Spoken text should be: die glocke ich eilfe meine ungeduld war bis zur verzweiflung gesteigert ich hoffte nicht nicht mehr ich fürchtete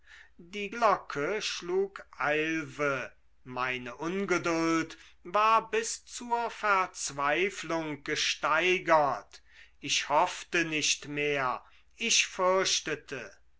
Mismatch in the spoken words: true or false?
true